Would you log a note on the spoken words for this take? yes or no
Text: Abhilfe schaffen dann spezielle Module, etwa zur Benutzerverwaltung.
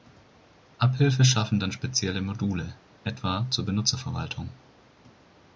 no